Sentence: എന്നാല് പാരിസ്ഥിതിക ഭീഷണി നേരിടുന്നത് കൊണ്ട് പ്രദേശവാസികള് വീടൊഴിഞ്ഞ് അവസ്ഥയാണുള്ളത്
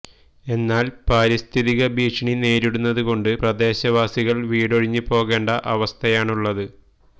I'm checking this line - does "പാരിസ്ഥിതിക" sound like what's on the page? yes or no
yes